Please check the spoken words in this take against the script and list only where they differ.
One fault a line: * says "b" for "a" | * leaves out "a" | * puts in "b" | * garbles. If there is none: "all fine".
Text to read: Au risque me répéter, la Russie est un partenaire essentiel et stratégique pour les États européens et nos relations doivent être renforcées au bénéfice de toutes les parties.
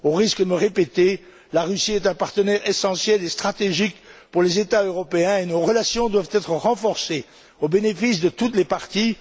all fine